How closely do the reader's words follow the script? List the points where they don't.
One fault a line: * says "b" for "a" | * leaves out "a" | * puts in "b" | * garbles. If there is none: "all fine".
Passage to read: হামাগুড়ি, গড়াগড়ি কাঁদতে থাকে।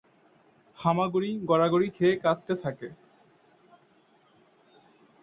* puts in "খেয়ে"